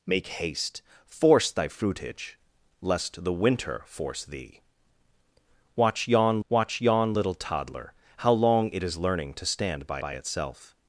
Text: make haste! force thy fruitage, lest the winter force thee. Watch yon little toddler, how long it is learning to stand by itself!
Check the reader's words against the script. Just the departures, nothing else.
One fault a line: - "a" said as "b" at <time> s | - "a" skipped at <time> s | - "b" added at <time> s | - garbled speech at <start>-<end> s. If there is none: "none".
- "watch yon" added at 6.5 s
- "by" added at 10.0 s